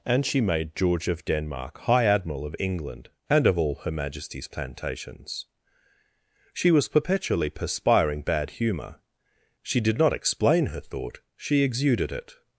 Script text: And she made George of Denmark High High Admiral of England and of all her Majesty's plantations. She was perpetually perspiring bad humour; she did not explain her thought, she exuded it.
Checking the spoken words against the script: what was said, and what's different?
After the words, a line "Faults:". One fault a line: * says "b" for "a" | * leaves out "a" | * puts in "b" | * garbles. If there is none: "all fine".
And she made George of Denmark High Admiral of England and of all her Majesty's plantations. She was perpetually perspiring bad humour; she did not explain her thought, she exuded it.
Faults:
* leaves out "High"